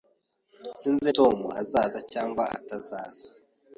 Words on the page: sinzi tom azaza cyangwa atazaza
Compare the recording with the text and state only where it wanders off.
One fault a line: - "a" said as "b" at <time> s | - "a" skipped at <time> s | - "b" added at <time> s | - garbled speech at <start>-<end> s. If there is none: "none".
none